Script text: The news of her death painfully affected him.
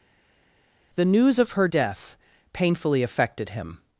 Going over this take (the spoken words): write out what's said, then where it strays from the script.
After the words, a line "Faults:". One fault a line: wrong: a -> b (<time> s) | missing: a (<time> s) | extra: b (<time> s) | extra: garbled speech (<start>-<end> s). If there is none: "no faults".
The news of her death painfully affected him.
Faults:
no faults